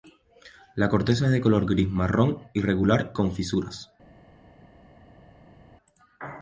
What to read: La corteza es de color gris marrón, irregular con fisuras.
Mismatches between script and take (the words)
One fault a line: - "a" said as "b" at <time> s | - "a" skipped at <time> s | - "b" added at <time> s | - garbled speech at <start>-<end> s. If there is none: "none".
none